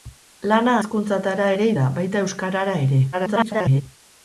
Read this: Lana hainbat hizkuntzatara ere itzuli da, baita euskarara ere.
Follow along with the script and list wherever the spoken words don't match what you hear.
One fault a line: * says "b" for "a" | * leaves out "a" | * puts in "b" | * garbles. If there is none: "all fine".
* leaves out "hainbat"
* leaves out "itzuli"
* garbles